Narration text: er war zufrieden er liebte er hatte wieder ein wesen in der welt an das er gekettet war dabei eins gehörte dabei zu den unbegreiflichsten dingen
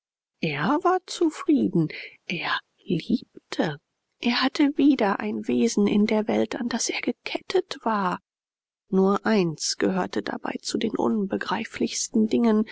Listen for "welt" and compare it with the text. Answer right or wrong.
right